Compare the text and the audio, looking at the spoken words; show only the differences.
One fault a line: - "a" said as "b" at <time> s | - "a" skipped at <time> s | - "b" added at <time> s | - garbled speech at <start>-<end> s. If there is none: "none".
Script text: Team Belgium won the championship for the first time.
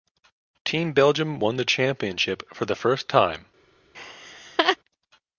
none